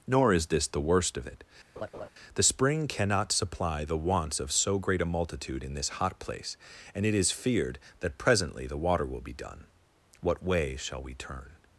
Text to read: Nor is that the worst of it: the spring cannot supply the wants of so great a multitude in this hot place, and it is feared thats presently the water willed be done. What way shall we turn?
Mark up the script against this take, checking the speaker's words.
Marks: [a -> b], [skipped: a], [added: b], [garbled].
Nor is [that -> this] the worst of it: the spring cannot supply the wants of so great a multitude in this hot place, and it is feared [thats -> that] presently the water [willed -> will] be done. What way shall we turn?